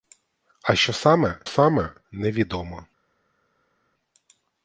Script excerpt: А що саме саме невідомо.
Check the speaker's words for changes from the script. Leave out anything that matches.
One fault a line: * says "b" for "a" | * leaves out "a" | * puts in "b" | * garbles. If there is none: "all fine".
all fine